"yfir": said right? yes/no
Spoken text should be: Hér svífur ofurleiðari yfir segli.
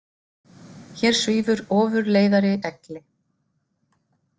no